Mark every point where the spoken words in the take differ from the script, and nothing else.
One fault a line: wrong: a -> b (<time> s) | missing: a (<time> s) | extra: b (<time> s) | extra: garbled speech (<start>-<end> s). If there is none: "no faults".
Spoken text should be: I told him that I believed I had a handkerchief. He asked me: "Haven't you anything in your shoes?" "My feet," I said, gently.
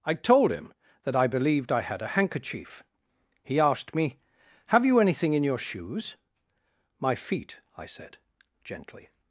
wrong: Haven't -> Have (4.7 s)